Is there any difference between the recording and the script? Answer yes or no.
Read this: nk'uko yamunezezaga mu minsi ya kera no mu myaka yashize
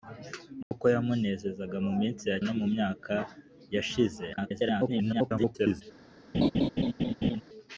yes